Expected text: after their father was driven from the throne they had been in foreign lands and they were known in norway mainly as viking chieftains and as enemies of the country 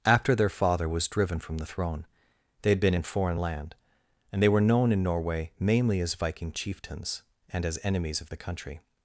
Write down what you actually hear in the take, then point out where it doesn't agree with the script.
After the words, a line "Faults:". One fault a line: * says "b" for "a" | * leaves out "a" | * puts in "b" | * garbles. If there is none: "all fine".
after their father was driven from the throne they had been in foreign land and they were known in norway mainly as viking chieftains and as enemies of the country
Faults:
* says "land" for "lands"